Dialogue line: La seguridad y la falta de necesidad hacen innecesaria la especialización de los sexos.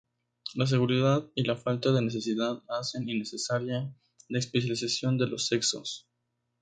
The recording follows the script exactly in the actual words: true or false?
true